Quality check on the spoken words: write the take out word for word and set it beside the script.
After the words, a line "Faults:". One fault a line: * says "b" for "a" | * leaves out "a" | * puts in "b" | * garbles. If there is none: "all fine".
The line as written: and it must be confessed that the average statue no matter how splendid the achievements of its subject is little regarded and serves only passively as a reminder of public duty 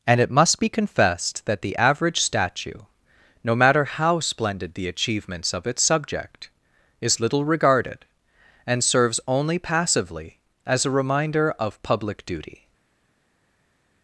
and it must be confessed that the average statue no matter how splendid the achievements of its subject is little regarded and serves only passively as a reminder of public duty
Faults:
all fine